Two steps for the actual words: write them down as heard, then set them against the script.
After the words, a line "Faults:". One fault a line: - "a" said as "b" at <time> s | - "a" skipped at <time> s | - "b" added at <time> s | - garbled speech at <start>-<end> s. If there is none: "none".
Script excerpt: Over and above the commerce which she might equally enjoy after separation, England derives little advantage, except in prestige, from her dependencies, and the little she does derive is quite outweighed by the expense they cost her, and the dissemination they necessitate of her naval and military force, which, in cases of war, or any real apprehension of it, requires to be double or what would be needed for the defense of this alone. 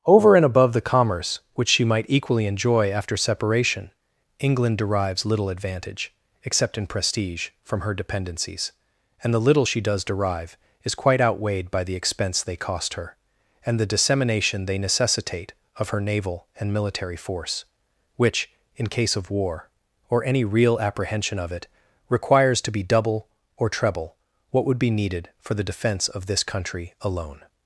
Over and above the commerce which she might equally enjoy after separation, England derives little advantage, except in prestige, from her dependencies, and the little she does derive is quite outweighed by the expense they cost her, and the dissemination they necessitate of her naval and military force, which, in case of war, or any real apprehension of it, requires to be double or treble what would be needed for the defense of this country alone.
Faults:
- "cases" said as "case" at 18.9 s
- "treble" added at 23.7 s
- "country" added at 26.4 s